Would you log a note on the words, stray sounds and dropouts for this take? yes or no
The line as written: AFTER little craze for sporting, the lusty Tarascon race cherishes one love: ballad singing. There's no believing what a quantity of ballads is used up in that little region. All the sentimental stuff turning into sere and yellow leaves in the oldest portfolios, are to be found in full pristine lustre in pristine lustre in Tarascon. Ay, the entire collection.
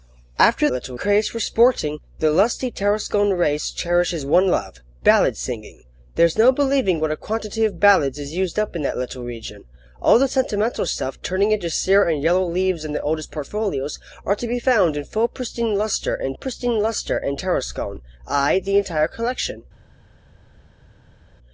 no